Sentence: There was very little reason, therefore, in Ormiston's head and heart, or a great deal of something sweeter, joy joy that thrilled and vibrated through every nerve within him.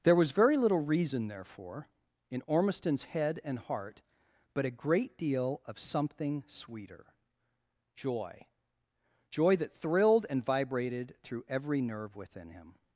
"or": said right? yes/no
no